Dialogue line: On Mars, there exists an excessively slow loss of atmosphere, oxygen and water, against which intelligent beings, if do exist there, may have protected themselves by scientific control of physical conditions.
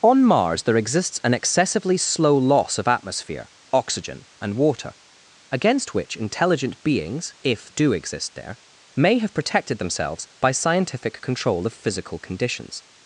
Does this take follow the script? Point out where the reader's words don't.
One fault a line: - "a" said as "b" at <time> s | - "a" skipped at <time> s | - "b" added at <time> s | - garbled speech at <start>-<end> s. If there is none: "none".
none